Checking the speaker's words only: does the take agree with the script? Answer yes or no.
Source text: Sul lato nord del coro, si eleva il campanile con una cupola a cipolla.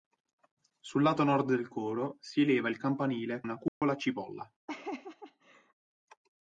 no